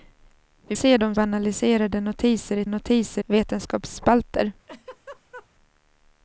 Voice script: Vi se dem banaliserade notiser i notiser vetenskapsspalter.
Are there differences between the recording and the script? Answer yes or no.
no